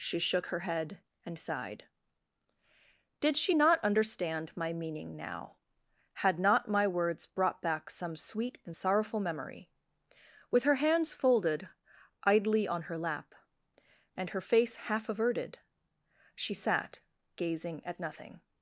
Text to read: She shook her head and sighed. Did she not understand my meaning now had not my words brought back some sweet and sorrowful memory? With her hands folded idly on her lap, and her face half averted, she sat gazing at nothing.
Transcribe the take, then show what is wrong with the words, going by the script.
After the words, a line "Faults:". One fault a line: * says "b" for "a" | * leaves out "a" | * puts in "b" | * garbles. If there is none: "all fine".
She shook her head and sighed. Did she not understand my meaning now had not my words brought back some sweet and sorrowful memory? With her hands folded idly on her lap, and her face half averted, she sat gazing at nothing.
Faults:
all fine